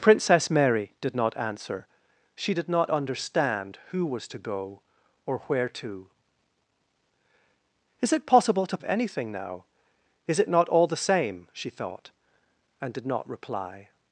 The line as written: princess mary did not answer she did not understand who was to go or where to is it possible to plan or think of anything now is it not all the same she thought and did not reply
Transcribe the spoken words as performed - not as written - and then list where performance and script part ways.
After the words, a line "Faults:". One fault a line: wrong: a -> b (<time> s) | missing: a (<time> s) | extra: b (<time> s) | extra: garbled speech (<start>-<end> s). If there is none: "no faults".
princess mary did not answer she did not understand who was to go or where to is it possible to of anything now is it not all the same she thought and did not reply
Faults:
missing: plan or think (8.8 s)